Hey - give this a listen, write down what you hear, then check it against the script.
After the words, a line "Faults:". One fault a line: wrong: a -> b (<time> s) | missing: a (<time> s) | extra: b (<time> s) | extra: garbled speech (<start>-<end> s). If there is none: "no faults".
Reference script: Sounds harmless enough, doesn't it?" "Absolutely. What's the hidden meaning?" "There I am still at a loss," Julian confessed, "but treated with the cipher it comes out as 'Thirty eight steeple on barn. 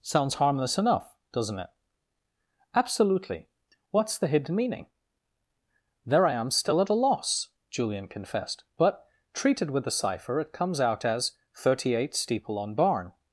Sounds harmless enough, doesn't it?" "Absolutely. What's the hidden meaning?" "There I am still at a loss," Julian confessed, "but treated with the cipher it comes out as 'Thirty eight steeple on barn.
Faults:
no faults